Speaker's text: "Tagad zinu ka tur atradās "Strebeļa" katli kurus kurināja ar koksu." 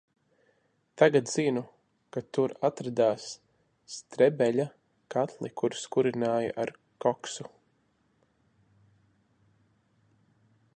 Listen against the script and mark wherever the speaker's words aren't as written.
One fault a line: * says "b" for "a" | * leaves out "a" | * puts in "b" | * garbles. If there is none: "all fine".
all fine